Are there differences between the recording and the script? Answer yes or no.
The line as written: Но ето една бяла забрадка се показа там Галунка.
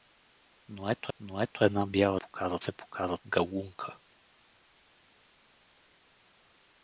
yes